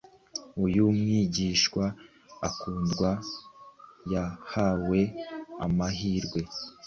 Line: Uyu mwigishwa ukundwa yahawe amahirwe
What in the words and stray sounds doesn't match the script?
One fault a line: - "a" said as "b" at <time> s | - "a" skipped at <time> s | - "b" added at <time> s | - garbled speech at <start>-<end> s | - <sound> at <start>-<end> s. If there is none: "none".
none